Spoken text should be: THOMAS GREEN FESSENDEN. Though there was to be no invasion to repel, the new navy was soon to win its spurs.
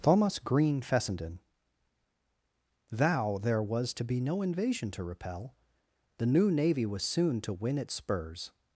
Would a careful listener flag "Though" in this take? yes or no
yes